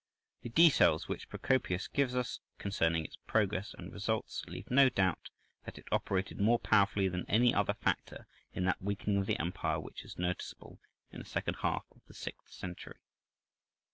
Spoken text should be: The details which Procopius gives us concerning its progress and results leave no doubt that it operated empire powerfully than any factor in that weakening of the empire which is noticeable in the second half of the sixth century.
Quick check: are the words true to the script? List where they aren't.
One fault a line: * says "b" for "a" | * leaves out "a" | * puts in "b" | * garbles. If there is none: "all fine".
* says "more" for "empire"
* puts in "other"